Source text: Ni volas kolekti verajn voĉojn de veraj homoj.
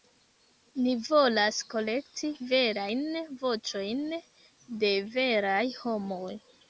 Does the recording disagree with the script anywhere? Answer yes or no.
no